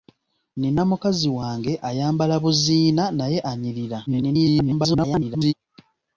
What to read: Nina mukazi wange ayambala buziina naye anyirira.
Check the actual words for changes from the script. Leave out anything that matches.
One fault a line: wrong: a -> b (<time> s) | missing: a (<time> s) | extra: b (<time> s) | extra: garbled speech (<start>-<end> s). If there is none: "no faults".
extra: garbled speech (4.1-5.5 s)